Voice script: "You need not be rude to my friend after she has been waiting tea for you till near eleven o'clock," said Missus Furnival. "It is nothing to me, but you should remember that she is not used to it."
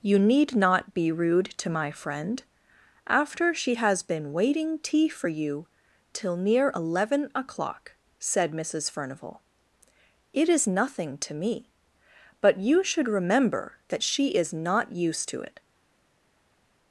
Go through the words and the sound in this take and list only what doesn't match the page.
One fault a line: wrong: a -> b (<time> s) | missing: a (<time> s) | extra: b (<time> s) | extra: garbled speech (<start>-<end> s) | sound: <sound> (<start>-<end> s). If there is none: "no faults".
no faults